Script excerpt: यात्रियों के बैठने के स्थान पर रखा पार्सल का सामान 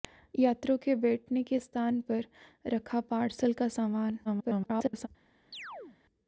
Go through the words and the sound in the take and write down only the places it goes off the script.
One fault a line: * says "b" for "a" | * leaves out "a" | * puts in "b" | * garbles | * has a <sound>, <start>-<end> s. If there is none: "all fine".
* garbles
* has a chirp, 5.5-6.0 s